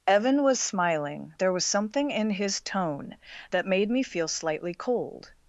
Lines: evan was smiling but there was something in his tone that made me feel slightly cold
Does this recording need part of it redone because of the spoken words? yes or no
yes